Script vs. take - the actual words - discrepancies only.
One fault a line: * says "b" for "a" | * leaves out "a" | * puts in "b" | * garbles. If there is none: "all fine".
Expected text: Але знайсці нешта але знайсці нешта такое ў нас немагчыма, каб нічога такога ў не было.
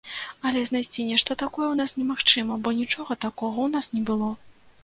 * leaves out "але знайсці нешта"
* says "бо" for "каб"
* puts in "нас"